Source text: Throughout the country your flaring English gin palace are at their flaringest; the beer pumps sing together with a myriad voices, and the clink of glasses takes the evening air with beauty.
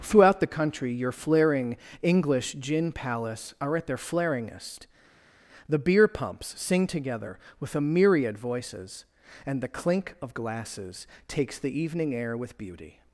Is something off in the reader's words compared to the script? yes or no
no